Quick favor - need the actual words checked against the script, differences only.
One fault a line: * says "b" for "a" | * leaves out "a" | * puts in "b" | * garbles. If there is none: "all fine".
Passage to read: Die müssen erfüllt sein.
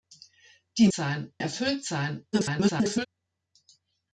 * says "sein" for "müssen"
* garbles